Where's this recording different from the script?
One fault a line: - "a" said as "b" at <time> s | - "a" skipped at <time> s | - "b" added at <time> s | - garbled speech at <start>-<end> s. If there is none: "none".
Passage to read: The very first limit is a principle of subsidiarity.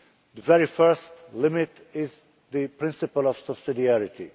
- "a" said as "the" at 2.5 s